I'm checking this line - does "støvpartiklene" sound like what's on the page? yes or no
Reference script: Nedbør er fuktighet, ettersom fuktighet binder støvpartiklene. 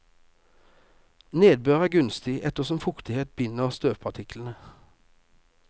yes